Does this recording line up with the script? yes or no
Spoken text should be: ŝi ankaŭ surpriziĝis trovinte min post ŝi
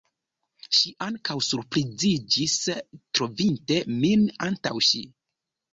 no